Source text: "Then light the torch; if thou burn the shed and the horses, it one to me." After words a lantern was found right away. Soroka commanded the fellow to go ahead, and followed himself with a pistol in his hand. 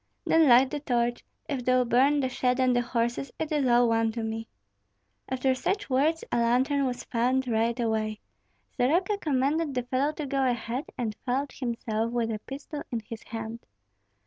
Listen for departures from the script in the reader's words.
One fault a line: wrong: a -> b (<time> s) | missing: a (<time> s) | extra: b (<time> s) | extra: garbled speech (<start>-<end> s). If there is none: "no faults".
extra: is all (3.5 s)
extra: such (5.5 s)